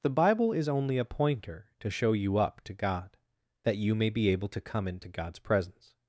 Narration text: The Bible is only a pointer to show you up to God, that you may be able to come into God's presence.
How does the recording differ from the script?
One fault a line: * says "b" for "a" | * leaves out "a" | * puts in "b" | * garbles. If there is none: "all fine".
all fine